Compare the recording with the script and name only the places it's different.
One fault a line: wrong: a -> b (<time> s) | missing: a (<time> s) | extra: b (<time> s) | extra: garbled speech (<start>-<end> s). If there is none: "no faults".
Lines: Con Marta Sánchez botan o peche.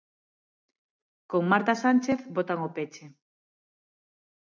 no faults